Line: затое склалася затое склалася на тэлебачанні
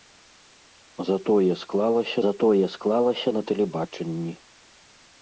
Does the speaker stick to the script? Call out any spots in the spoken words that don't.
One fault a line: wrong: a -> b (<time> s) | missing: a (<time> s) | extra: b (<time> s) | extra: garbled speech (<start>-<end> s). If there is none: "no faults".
no faults